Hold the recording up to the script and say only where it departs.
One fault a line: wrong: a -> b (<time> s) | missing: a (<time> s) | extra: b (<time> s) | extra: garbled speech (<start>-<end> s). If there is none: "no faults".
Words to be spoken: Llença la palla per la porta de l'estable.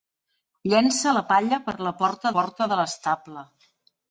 extra: porta (2.4 s)